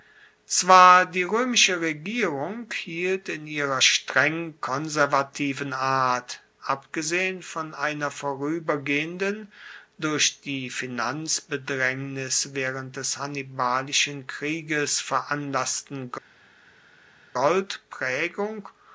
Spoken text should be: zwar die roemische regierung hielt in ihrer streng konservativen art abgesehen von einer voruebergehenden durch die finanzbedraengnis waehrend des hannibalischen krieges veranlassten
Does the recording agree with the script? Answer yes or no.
yes